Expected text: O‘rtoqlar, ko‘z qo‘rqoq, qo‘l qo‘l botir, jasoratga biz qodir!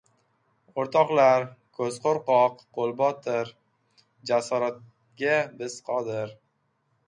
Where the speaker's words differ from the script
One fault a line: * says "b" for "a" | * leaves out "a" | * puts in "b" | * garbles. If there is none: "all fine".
* leaves out "qo‘l"